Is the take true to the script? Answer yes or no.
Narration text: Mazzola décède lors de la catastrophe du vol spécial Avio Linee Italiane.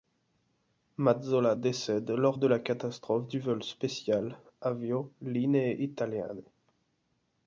yes